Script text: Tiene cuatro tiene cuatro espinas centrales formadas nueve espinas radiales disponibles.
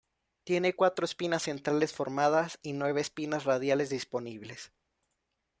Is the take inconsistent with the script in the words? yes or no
yes